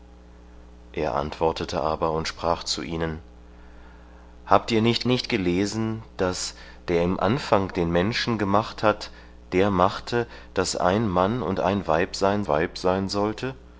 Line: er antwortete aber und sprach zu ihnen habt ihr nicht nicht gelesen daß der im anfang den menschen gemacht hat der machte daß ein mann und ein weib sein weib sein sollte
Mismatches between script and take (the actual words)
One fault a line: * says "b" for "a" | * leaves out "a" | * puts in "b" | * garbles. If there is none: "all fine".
all fine